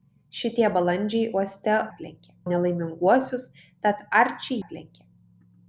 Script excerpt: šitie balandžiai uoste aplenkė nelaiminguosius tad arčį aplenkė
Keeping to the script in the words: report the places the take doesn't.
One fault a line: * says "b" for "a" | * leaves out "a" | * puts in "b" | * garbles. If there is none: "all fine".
all fine